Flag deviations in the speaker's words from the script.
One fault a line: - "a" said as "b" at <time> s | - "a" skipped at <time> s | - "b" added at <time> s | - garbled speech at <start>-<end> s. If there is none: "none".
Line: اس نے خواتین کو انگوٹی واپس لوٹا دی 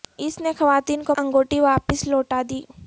none